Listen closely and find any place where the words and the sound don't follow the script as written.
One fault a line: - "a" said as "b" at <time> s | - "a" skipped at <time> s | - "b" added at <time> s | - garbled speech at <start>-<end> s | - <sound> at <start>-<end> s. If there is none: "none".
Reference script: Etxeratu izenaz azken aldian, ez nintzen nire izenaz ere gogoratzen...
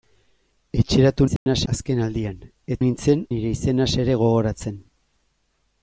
- dropout at 1.4-1.5 s